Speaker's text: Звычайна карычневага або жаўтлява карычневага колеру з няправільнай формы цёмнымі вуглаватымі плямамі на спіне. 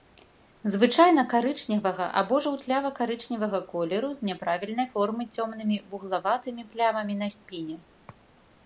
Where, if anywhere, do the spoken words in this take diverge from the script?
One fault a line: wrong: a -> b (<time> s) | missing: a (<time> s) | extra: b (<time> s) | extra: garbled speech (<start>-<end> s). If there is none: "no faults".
no faults